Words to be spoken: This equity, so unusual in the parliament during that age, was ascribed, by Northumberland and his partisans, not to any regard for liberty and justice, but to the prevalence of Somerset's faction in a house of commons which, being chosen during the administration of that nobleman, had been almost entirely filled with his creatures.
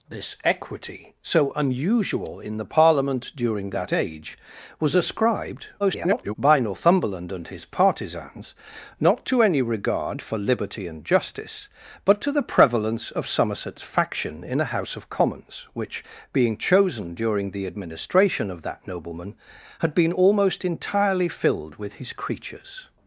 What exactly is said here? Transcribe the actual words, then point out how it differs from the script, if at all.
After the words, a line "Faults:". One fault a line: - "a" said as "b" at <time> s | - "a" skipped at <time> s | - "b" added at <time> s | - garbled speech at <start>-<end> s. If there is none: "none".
This equity, so unusual in the parliament during that age, was ascribed, [garbled] by Northumberland and his partisans, not to any regard for liberty and justice, but to the prevalence of Somerset's faction in a house of commons which, being chosen during the administration of that nobleman, had been almost entirely filled with his creatures.
Faults:
- garbled speech at 5.8-6.3 s